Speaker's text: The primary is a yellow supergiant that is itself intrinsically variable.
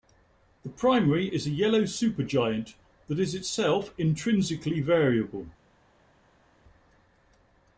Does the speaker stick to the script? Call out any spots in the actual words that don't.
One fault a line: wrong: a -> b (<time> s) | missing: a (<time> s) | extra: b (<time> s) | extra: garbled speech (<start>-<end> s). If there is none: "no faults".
no faults